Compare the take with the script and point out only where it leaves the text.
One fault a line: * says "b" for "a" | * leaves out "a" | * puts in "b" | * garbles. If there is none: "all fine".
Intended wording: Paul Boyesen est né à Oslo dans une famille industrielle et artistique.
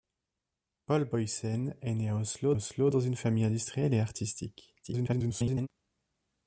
* puts in "Oslo"
* garbles